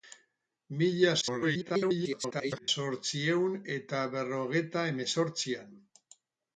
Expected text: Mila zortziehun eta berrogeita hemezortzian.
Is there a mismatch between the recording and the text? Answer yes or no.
yes